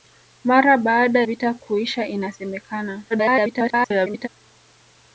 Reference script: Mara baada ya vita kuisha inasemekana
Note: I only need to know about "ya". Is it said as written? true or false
false